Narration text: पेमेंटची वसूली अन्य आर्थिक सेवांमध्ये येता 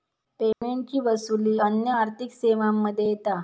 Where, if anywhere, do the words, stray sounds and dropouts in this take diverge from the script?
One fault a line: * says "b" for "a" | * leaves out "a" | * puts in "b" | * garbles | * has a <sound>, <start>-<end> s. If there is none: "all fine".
* has a dropout, 0.5-0.6 s